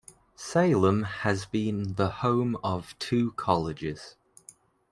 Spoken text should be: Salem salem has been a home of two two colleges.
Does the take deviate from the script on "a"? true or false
true